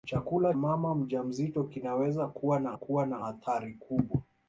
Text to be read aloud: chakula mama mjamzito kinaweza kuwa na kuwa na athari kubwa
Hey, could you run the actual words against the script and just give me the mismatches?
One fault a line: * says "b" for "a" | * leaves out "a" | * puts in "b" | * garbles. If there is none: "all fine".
all fine